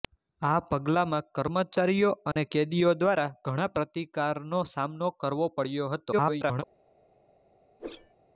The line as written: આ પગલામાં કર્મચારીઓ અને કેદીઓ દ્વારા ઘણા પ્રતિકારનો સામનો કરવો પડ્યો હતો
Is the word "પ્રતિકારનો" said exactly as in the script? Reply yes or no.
yes